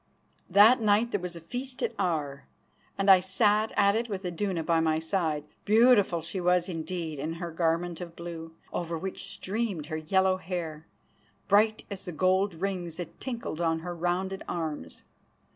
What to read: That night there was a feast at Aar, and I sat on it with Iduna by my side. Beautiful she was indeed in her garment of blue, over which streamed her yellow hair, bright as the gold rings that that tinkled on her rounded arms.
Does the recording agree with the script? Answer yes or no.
no